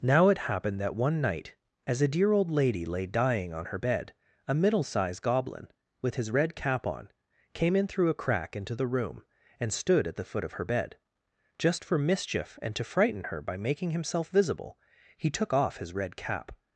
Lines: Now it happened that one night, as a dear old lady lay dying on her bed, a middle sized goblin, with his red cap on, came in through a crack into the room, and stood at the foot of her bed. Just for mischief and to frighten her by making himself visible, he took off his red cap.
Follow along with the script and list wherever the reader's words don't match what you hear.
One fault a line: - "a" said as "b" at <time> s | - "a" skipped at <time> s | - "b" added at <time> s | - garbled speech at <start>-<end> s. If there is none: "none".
none